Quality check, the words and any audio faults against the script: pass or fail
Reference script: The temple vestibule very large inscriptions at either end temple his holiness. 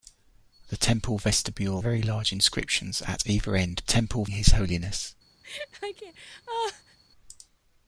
fail